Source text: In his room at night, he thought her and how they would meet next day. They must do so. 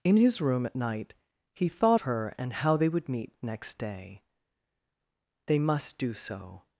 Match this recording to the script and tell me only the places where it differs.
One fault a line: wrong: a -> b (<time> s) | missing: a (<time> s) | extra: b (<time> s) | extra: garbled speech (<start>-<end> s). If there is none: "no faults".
no faults